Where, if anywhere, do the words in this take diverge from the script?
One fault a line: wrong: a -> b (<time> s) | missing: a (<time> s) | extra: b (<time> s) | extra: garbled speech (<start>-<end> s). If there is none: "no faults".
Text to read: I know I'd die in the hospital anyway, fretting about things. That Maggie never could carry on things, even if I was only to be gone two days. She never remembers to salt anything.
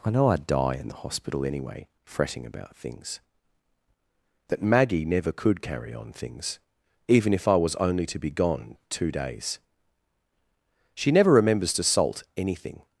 no faults